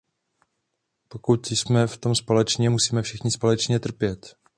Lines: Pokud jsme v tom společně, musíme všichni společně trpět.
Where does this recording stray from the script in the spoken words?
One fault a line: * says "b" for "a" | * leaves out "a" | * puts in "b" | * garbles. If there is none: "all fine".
all fine